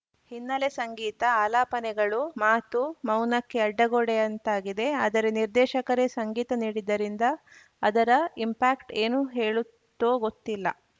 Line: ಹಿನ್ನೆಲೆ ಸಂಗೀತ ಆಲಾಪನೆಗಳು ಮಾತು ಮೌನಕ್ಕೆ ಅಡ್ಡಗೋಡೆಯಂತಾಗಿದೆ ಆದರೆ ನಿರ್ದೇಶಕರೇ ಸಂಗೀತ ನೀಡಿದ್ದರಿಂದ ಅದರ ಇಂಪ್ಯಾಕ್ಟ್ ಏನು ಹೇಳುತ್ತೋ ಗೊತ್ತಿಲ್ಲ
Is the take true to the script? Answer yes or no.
yes